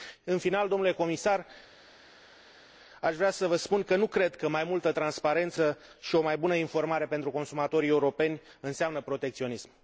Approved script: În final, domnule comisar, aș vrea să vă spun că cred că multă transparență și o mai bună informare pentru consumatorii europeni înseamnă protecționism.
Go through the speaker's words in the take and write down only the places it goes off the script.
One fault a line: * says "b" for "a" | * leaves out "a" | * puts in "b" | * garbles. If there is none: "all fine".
* puts in "nu"
* puts in "mai"